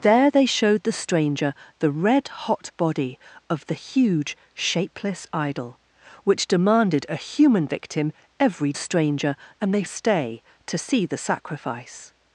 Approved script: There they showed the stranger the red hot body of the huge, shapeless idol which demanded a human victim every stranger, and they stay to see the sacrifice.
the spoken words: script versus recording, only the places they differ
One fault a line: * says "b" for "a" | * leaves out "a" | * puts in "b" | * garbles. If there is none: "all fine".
all fine